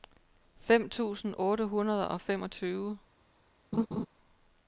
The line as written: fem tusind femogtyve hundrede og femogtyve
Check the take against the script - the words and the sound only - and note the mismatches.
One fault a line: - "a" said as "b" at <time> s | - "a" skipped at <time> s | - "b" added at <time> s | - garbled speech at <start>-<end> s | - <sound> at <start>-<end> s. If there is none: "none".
- "femogtyve" said as "otte" at 1.4 s
- laugh at 3.7-4.1 s